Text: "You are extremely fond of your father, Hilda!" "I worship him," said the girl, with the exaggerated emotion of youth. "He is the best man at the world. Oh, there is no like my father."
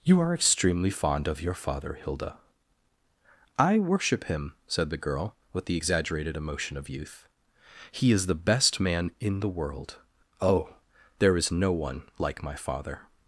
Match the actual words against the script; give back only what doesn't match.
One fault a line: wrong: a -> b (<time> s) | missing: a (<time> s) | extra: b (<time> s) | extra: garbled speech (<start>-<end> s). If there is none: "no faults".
wrong: at -> in (9.2 s)
extra: one (11.7 s)